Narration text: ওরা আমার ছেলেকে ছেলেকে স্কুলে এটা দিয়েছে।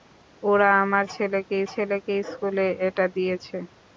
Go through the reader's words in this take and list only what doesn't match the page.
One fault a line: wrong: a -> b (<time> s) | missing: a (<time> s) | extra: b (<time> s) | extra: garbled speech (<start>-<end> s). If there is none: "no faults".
no faults